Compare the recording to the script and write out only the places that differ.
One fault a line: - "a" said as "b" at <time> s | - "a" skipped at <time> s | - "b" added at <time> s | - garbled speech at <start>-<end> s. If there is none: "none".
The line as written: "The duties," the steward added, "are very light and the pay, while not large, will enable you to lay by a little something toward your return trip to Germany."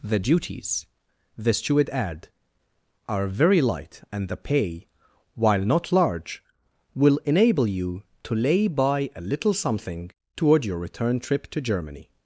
- "added" said as "add" at 1.9 s